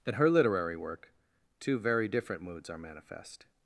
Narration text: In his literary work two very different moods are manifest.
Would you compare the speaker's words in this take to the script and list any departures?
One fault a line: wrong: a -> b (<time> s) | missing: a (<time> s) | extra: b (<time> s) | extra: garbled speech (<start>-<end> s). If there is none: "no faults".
wrong: his -> her (0.1 s)